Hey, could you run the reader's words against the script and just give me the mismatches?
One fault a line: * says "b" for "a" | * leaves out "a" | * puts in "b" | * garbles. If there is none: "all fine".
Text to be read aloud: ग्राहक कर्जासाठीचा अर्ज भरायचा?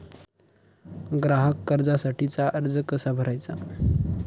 * puts in "कसा"